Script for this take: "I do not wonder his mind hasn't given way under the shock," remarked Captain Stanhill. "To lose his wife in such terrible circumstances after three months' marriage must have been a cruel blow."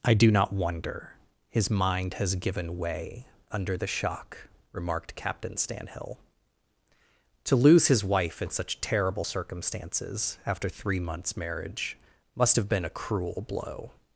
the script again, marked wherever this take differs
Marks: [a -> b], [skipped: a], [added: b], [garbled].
"I do not wonder his mind [hasn't -> has] given way under the shock," remarked Captain Stanhill. "To lose his wife in such terrible circumstances after three months' marriage must have been a cruel blow."